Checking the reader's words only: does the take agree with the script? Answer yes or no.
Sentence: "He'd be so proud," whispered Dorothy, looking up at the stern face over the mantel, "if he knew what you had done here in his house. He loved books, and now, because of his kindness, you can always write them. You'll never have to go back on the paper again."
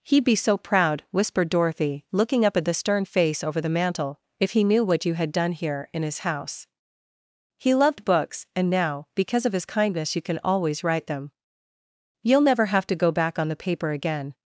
yes